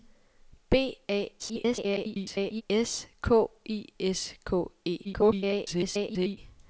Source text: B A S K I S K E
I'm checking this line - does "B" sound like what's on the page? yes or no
yes